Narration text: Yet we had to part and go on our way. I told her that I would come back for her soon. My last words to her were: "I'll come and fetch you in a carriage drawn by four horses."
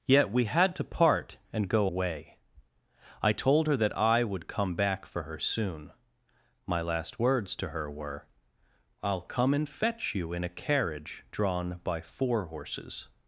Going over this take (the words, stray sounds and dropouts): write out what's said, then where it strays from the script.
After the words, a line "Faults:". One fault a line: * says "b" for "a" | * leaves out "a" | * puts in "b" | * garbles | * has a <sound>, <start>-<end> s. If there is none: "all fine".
Yet we had to part and go way. I told her that I would come back for her soon. My last words to her were: "I'll come and fetch you in a carriage drawn by four horses."
Faults:
* leaves out "on our"